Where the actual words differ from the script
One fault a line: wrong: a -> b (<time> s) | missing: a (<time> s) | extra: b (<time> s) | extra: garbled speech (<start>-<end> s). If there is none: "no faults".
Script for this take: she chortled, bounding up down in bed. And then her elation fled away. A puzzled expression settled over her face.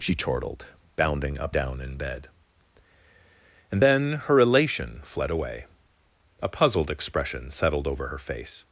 no faults